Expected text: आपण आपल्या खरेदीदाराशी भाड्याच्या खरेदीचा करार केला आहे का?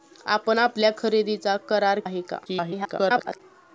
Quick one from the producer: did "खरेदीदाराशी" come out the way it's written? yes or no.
no